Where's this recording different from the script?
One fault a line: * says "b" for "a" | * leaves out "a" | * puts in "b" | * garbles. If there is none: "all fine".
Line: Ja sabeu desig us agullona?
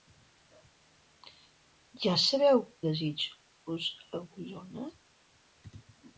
all fine